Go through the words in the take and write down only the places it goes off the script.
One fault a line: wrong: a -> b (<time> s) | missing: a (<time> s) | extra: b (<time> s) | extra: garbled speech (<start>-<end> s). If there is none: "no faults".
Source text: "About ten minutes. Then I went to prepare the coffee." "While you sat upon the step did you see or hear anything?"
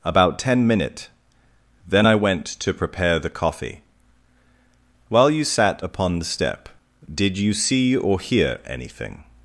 wrong: minutes -> minute (0.7 s)